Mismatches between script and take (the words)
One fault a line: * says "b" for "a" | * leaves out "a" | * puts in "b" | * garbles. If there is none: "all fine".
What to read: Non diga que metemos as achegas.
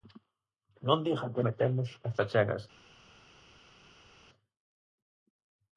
all fine